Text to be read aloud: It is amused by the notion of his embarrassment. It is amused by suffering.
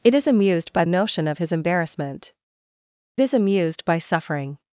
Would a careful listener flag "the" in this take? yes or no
yes